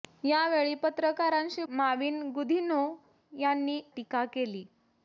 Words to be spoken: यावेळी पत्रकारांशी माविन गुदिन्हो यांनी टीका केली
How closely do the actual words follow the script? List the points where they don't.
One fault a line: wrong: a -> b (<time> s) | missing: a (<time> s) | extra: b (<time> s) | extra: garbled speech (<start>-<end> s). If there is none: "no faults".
no faults